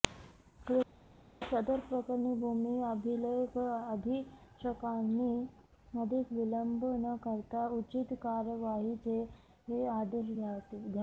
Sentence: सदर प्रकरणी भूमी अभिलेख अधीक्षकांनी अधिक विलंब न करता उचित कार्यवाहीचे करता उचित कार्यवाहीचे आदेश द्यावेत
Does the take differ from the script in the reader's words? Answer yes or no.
yes